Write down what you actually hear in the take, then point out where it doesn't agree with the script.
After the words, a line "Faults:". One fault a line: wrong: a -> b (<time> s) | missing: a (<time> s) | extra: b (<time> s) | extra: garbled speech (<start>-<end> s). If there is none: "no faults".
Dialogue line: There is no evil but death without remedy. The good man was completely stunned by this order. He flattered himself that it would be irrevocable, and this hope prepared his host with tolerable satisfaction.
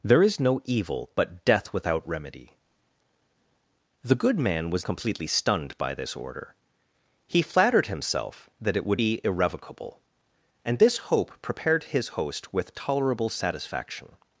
There is no evil but death without remedy. The good man was completely stunned by this order. He flattered himself that it would be irrevocable, and this hope prepared his host with tolerable satisfaction.
Faults:
no faults